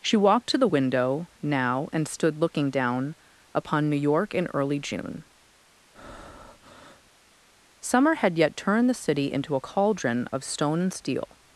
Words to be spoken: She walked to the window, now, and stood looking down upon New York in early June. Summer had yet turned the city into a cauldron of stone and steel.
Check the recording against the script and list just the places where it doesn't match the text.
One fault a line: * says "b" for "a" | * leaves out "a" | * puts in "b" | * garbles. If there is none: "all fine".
all fine